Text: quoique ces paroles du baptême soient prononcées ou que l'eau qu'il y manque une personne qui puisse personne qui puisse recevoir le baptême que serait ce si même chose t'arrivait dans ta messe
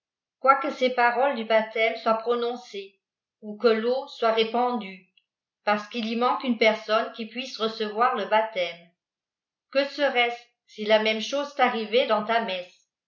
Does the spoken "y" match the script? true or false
true